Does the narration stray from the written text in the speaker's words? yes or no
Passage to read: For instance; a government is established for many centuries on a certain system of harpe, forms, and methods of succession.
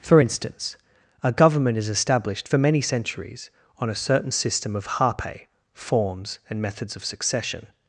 no